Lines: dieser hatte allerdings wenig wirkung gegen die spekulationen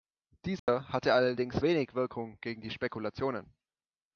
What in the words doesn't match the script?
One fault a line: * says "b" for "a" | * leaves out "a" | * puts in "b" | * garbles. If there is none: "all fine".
all fine